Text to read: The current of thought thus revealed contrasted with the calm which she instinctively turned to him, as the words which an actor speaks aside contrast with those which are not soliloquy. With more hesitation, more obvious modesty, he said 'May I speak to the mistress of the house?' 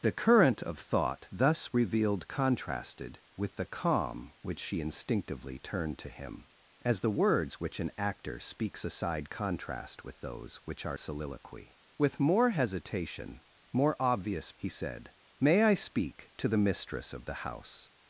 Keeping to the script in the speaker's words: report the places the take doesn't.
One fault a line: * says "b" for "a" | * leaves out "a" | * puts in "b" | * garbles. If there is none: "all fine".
* leaves out "not"
* leaves out "modesty"